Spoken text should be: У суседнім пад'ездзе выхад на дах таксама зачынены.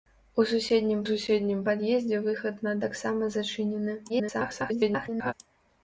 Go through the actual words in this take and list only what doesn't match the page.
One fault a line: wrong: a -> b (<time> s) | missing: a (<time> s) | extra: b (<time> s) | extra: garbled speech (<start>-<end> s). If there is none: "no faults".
extra: суседнім (1.1 s)
missing: дах (2.8 s)
extra: garbled speech (4.1-5.3 s)